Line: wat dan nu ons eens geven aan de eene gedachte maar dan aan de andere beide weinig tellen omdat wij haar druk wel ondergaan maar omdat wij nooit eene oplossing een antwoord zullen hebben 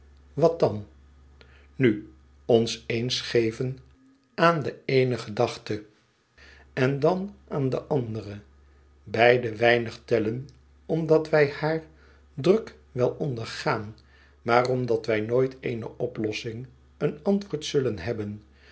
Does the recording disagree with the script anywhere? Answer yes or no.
yes